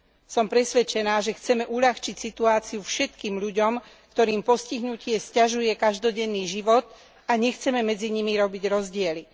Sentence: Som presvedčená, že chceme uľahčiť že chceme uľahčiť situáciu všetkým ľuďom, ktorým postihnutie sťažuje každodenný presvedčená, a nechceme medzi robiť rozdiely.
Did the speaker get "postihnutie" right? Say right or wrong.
right